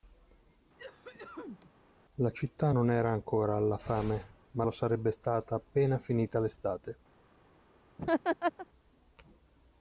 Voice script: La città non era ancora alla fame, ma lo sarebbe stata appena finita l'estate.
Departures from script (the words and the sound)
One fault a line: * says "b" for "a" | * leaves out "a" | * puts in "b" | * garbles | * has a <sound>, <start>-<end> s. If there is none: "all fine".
* has a cough, 0.8-1.7 s
* has a laugh, 8.0-8.7 s